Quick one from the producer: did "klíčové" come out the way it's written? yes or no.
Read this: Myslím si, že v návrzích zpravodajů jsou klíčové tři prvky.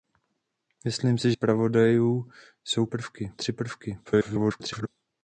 no